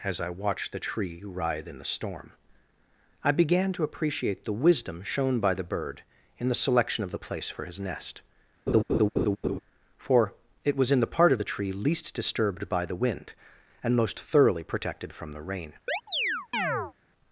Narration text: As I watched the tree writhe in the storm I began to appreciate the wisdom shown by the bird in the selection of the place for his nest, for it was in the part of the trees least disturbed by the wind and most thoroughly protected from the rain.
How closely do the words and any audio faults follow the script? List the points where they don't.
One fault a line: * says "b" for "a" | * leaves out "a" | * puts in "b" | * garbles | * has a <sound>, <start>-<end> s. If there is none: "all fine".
* has a laugh, 8.7-9.6 s
* says "tree" for "trees"
* has a chirp, 15.9-16.9 s